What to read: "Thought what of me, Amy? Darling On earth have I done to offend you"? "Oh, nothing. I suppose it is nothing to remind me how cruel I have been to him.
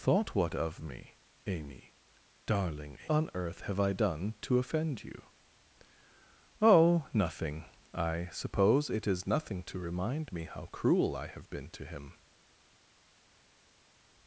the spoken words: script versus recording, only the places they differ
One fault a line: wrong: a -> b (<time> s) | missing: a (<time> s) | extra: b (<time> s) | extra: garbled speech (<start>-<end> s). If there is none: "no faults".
no faults